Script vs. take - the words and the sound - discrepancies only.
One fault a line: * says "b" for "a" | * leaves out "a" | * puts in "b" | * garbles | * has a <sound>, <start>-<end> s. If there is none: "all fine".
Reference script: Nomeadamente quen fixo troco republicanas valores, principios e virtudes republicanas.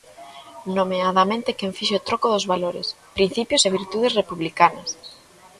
* says "dos" for "republicanas"